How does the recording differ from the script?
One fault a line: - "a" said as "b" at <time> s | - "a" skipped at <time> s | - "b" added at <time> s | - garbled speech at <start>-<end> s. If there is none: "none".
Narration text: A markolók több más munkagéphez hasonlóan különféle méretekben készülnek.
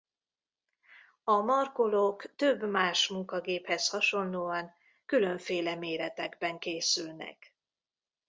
none